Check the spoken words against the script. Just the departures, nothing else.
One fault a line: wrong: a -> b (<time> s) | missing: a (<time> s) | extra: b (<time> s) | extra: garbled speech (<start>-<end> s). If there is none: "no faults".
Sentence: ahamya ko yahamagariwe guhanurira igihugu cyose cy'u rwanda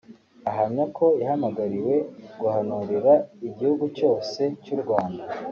no faults